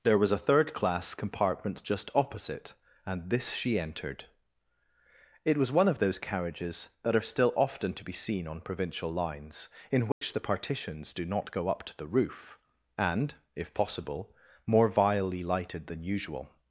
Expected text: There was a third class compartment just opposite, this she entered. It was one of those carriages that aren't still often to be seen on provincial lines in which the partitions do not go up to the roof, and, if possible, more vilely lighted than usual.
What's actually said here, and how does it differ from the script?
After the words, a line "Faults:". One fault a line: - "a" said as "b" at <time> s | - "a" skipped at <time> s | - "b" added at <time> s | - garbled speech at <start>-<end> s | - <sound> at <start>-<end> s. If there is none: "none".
There was a third class compartment just opposite, and this she entered. It was one of those carriages that are still often to be seen on provincial lines in which the partitions do not go up to the roof, and, if possible, more vilely lighted than usual.
Faults:
- "and" added at 3.0 s
- "aren't" said as "are" at 7.2 s
- dropout at 10.1-10.2 s